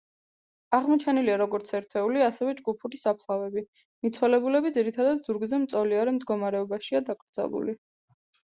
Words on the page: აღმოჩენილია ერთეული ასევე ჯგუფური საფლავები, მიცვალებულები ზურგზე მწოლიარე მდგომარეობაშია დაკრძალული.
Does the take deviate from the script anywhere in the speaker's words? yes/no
yes